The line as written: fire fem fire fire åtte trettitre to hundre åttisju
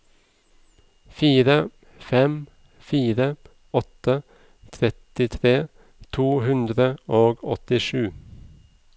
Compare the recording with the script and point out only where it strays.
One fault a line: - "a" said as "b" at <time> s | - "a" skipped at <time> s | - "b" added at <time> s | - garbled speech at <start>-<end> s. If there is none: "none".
- "fire" skipped at 3.3 s
- "og" added at 7.2 s